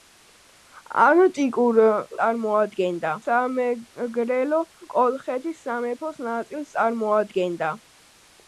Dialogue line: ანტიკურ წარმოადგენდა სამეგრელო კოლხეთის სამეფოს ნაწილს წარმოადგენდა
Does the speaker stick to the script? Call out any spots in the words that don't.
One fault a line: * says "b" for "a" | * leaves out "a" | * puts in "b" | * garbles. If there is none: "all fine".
all fine